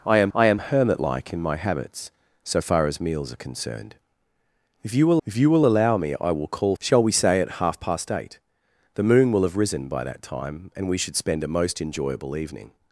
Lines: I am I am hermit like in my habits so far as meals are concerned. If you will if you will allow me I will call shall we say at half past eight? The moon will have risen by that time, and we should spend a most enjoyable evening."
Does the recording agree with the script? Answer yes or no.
yes